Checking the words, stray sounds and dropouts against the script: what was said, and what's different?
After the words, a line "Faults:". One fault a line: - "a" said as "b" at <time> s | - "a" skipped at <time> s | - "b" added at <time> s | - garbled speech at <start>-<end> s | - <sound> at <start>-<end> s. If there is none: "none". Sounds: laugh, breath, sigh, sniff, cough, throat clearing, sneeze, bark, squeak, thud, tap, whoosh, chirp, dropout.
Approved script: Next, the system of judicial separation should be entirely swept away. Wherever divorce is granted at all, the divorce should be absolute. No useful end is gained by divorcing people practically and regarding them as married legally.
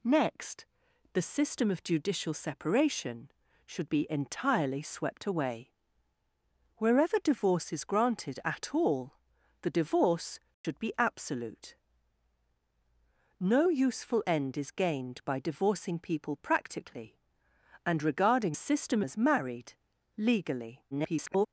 Next, the system of judicial separation should be entirely swept away. Wherever divorce is granted at all, the divorce should be absolute. No useful end is gained by divorcing people practically and regarding system as married legally. [garbled]
Faults:
- dropout at 10.5-10.6 s
- "them" said as "system" at 18.5 s
- garbled speech at 20.9-21.5 s